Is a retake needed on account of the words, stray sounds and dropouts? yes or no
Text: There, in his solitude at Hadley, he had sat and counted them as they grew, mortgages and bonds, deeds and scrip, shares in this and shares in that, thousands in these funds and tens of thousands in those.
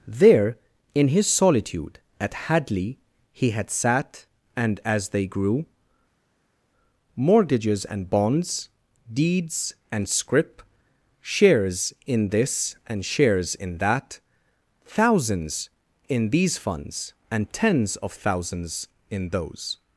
yes